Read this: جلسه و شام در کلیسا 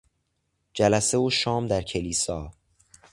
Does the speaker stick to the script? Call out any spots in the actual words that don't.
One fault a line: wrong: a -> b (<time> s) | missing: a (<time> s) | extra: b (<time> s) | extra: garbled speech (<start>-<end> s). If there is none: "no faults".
no faults